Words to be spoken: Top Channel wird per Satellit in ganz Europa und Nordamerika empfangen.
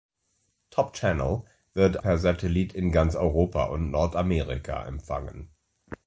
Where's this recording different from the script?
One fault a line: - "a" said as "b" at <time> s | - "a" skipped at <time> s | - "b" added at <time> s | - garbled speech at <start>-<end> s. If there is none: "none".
none